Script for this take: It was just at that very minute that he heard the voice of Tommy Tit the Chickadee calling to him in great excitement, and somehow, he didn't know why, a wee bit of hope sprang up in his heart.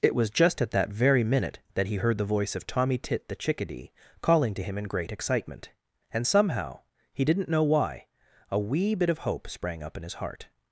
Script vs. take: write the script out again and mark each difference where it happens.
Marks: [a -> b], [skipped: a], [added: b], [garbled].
It was just at that very minute that he heard the voice of Tommy Tit the Chickadee calling to him in great excitement, and somehow, he didn't know why, a wee bit of hope sprang up in his heart.